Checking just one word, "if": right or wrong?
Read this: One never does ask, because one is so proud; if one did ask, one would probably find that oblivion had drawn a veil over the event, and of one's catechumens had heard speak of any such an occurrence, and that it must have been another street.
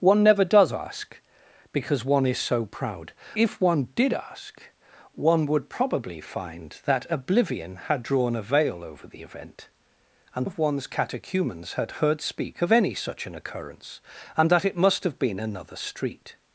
right